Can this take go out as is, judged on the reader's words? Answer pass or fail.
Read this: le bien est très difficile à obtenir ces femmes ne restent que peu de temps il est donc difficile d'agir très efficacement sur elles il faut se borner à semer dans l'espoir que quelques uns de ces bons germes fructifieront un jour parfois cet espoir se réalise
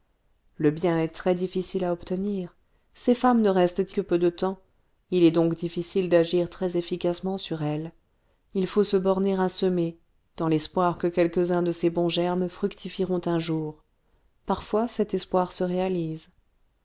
pass